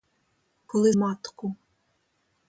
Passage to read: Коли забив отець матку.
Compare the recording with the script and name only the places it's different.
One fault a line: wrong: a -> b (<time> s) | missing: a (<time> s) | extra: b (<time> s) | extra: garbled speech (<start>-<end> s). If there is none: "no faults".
missing: забив отець (0.9 s)